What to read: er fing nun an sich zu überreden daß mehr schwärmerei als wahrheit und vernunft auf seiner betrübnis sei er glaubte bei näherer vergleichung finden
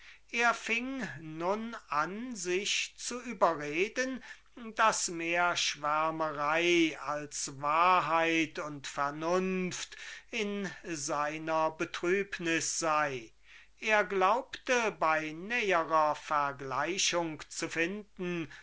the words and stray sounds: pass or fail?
fail